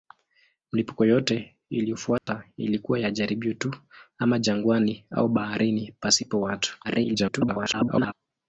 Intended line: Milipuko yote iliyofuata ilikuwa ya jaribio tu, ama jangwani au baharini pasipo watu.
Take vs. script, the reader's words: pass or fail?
fail